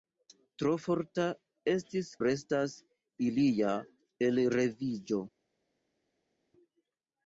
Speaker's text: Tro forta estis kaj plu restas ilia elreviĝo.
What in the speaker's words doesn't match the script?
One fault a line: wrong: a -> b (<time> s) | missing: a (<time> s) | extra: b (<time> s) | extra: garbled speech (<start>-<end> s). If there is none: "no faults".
missing: kaj plu (2.1 s)